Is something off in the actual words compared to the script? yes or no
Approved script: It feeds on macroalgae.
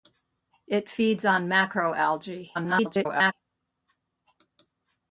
yes